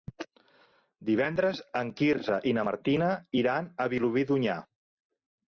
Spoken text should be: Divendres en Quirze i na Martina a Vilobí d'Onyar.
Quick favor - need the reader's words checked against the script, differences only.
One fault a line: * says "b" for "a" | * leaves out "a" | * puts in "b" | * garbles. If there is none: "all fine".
* puts in "iran"